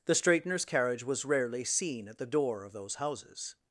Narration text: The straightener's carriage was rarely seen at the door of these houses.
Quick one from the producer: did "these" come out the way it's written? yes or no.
no